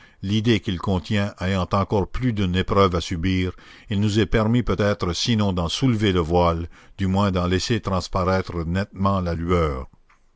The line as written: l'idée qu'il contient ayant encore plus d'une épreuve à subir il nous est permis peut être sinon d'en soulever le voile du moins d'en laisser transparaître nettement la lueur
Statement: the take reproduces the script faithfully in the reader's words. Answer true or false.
true